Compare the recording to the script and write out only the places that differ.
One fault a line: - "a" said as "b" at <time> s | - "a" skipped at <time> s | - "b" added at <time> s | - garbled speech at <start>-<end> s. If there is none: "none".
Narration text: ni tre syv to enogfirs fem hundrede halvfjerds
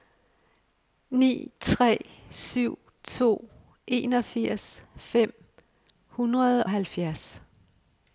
none